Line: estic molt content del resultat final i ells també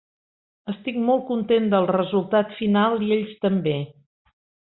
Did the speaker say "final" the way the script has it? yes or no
yes